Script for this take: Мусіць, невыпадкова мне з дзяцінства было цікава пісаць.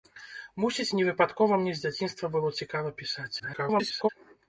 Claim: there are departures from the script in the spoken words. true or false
true